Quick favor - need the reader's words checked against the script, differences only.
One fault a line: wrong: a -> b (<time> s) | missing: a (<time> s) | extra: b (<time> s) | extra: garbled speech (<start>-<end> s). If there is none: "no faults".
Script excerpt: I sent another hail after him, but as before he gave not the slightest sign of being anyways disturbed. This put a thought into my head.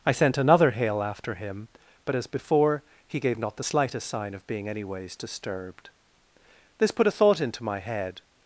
no faults